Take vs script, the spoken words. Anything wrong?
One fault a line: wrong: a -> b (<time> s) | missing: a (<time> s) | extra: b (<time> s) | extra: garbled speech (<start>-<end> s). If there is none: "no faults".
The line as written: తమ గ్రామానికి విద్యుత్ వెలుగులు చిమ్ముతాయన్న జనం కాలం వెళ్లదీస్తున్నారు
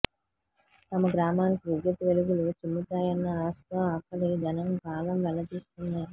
extra: ఆశతో అక్కడి (3.4 s)